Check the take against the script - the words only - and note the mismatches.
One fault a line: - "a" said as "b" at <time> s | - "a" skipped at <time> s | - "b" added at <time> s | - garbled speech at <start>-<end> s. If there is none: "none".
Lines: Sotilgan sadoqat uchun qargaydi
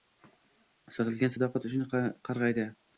none